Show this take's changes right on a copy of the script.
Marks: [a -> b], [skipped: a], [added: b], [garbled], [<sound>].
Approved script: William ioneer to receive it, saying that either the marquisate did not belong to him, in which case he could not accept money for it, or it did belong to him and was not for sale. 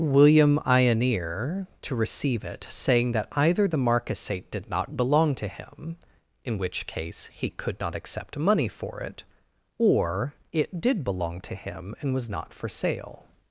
William ioneer to receive it, saying that either the marquisate did not belong to him, in which case he could not accept money for it, or it did belong to him and was not for sale.